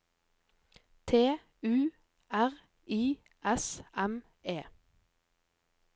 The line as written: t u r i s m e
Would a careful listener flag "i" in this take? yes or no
no